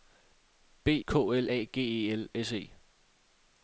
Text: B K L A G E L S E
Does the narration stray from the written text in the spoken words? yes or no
no